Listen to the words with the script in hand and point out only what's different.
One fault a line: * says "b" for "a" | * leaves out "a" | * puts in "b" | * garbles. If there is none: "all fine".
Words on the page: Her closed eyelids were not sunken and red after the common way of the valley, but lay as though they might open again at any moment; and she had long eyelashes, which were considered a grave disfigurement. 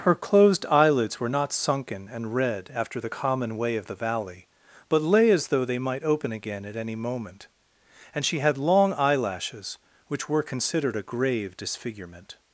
all fine